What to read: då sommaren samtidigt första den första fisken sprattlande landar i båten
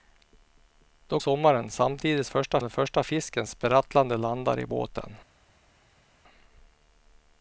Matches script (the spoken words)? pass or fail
pass